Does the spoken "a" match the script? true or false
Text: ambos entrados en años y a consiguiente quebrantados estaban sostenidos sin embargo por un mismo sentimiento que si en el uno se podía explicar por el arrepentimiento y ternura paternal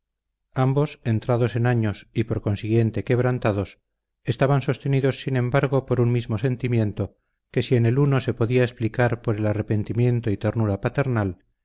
false